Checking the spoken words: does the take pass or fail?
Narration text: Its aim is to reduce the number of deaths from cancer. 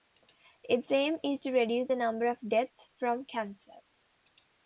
pass